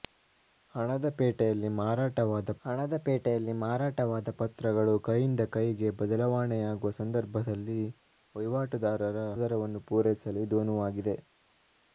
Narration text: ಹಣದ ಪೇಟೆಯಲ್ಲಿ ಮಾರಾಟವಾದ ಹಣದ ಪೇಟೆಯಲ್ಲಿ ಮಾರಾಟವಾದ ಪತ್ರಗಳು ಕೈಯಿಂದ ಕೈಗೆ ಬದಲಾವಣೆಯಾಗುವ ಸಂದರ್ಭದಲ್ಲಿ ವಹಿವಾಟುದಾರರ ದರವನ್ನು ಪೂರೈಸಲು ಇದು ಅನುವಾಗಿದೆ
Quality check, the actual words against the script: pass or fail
pass